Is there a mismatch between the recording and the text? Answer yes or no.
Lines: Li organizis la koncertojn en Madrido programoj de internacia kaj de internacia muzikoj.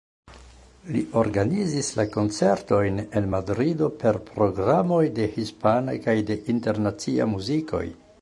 yes